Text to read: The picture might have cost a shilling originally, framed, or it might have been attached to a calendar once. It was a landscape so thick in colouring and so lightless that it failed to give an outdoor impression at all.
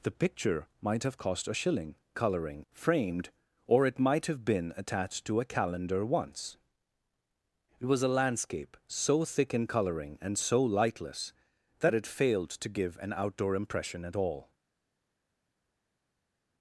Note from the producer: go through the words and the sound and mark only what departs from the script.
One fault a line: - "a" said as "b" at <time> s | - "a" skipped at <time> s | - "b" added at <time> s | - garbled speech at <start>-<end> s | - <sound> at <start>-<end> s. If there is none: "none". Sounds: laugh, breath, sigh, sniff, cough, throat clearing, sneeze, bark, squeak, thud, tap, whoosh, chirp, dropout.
- "originally" said as "colouring" at 2.1 s